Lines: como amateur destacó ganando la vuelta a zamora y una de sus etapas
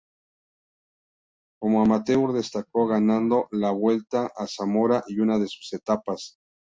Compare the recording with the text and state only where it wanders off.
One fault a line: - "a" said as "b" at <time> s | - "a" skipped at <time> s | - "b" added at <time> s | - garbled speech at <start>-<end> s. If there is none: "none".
none